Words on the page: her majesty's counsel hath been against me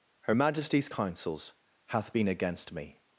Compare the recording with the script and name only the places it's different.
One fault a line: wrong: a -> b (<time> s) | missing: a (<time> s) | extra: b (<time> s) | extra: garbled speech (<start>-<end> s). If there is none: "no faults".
wrong: counsel -> counsels (0.9 s)